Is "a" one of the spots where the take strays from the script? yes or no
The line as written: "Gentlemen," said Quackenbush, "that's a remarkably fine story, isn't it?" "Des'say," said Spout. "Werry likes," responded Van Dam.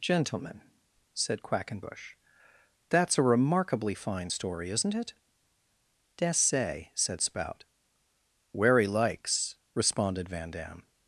no